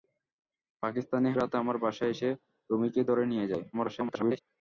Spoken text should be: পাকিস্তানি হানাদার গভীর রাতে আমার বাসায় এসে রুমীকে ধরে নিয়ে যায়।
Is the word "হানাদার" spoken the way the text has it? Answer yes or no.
no